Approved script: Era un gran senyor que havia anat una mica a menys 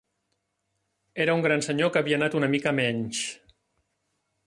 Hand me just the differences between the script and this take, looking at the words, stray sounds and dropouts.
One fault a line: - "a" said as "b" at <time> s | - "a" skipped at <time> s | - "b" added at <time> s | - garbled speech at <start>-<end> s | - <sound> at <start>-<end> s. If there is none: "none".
none